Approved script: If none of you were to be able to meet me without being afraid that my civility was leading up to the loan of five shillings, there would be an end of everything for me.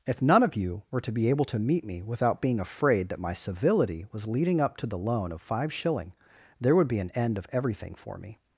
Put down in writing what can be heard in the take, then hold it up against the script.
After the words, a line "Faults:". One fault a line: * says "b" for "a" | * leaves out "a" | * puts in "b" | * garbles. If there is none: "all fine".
If none of you were to be able to meet me without being afraid that my civility was leading up to the loan of five shilling, there would be an end of everything for me.
Faults:
* says "shilling" for "shillings"